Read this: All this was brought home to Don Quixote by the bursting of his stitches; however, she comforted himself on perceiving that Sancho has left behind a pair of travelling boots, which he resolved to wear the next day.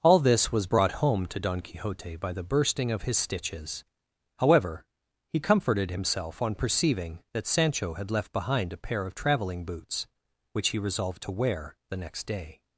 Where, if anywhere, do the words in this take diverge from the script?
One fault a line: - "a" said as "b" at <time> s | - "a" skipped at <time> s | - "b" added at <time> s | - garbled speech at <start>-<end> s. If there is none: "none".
- "she" said as "he" at 5.3 s
- "has" said as "had" at 7.9 s